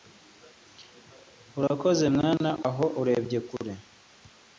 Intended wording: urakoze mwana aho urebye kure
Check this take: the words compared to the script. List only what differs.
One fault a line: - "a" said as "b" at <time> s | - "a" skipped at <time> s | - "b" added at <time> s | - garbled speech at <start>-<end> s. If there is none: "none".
none